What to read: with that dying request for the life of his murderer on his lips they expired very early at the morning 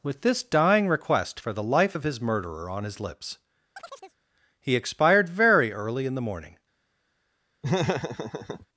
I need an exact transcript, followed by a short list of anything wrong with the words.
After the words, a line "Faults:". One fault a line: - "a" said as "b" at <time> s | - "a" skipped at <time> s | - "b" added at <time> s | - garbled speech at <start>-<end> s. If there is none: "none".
with this dying request for the life of his murderer on his lips he expired very early in the morning
Faults:
- "that" said as "this" at 0.2 s
- "they" said as "he" at 4.6 s
- "at" said as "in" at 6.1 s